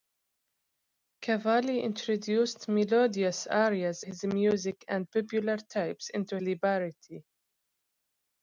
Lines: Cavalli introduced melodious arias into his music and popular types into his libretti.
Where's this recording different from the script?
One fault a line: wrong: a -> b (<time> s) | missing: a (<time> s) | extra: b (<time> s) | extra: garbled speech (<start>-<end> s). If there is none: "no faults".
missing: into (4.0 s)
missing: his (6.4 s)